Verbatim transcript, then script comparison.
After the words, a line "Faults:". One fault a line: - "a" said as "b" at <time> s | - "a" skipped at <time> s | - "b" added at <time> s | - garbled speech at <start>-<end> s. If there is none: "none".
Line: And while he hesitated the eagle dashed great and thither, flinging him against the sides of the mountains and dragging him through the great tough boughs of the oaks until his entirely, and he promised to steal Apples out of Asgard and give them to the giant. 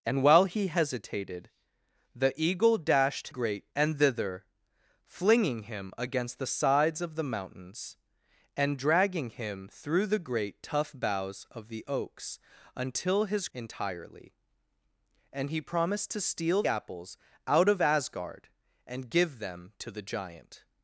And while he hesitated the eagle dashed great and thither, flinging him against the sides of the mountains and dragging him through the great tough boughs of the oaks until his entirely, and he promised to steal Apples out of Asgard and give them to the giant.
Faults:
none